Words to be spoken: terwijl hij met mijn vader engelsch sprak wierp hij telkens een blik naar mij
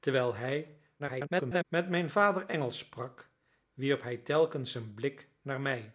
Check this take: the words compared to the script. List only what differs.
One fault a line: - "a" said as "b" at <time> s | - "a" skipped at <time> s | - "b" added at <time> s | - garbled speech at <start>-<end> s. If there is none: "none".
- garbled speech at 1.0-1.6 s